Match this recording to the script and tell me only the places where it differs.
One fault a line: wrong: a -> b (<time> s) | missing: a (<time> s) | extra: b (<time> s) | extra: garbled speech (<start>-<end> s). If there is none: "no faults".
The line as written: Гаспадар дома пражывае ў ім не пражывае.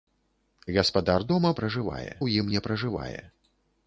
no faults